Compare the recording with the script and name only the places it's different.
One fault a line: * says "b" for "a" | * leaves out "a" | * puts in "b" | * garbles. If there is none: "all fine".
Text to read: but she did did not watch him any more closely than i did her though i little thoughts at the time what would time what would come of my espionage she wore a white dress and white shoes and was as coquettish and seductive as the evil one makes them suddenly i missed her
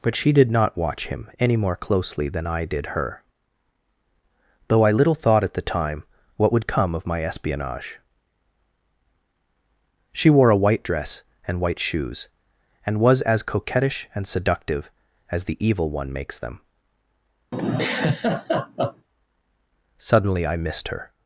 * leaves out "did"
* says "thought" for "thoughts"
* leaves out "time what would"